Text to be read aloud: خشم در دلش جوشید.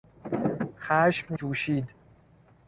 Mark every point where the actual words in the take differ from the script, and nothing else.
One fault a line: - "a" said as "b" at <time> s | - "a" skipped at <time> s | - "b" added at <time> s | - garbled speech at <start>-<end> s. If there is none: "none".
- "در دلش" skipped at 1.4 s